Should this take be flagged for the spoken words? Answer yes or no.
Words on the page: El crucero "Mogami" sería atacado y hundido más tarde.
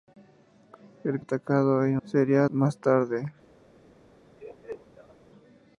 yes